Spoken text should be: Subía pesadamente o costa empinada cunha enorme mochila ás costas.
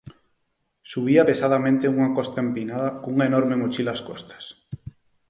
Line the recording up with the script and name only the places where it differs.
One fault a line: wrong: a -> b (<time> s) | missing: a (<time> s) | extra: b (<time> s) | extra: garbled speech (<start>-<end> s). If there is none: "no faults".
wrong: o -> unha (2.0 s)